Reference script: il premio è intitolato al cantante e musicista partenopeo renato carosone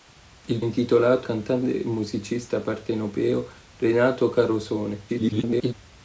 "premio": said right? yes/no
no